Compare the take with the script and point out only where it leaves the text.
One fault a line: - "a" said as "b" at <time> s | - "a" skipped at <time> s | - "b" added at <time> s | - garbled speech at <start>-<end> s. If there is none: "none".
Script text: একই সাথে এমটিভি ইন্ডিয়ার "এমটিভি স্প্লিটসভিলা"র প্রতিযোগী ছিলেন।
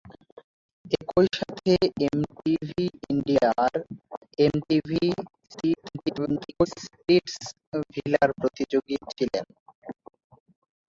- garbled speech at 5.5-6.7 s